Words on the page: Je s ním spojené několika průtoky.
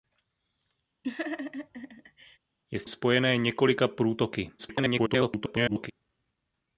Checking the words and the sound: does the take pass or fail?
fail